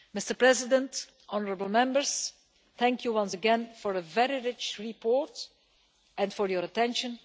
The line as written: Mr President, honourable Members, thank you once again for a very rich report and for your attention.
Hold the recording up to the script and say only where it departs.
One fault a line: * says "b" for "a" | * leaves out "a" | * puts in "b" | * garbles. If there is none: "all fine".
all fine